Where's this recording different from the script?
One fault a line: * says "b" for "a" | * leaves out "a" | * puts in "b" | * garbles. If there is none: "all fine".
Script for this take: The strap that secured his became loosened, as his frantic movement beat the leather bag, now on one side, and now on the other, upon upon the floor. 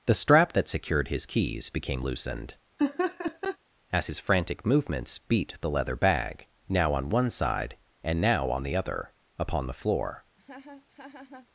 * puts in "keys"
* says "movements" for "movement"
* leaves out "upon"